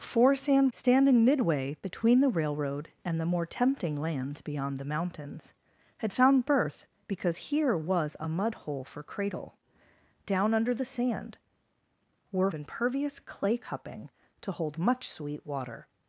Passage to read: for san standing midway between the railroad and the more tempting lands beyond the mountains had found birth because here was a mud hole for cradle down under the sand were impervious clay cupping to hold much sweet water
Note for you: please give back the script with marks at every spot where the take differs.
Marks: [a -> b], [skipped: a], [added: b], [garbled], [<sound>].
for san standing midway between the railroad and the more tempting lands beyond the mountains had found birth because here was a mud hole for cradle down under the sand were impervious clay cupping to hold much sweet water